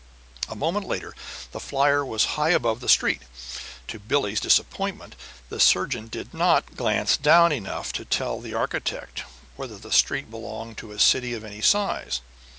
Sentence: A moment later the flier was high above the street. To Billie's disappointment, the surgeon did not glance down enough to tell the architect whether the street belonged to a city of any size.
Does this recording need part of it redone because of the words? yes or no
no